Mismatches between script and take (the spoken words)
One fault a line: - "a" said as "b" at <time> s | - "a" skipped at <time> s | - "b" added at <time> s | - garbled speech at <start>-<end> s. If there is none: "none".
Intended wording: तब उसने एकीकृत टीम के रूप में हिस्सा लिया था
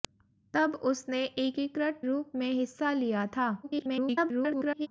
- "टीम के" skipped at 2.0 s
- garbled speech at 3.6-4.9 s